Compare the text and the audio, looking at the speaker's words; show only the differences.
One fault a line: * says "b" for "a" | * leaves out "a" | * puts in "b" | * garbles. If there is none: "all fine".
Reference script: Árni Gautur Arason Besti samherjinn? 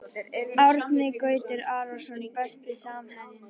all fine